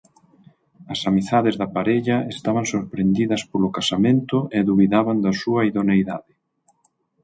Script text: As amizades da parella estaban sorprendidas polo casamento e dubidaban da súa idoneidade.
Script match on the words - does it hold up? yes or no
yes